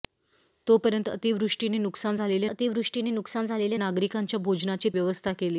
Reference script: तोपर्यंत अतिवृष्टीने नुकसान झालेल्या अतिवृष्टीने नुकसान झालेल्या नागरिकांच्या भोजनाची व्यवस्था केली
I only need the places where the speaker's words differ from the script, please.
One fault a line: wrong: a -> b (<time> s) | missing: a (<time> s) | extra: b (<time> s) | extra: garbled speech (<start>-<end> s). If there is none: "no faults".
no faults